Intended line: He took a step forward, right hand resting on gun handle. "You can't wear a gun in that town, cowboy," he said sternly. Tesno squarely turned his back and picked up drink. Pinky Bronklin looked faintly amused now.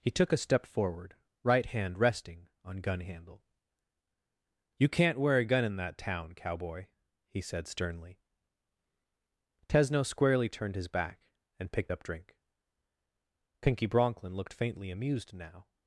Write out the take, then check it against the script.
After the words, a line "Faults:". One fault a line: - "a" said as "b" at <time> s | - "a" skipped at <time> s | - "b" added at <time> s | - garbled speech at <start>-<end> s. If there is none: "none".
He took a step forward, right hand resting on gun handle. "You can't wear a gun in that town, cowboy," he said sternly. Tesno squarely turned his back and picked up drink. Pinky Bronklin looked faintly amused now.
Faults:
none